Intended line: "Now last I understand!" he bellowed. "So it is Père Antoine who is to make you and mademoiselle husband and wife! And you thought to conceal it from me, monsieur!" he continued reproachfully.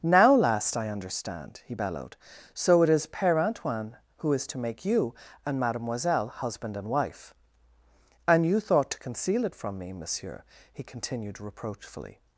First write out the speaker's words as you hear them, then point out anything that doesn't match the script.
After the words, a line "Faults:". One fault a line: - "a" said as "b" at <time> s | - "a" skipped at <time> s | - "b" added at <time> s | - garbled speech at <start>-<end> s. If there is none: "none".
"Now last I understand!" he bellowed. "So it is Père Antoine who is to make you and mademoiselle husband and wife! And you thought to conceal it from me, monsieur!" he continued reproachfully.
Faults:
none